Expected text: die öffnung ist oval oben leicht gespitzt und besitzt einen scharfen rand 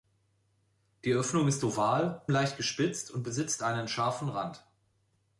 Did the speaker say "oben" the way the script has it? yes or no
no